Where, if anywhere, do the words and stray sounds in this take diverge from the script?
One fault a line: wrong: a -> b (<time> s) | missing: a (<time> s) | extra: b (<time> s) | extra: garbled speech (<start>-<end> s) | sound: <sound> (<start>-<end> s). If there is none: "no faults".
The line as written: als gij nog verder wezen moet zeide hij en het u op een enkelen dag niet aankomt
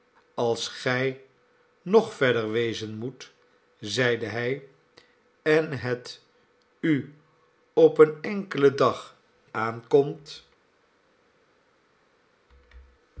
missing: niet (9.2 s)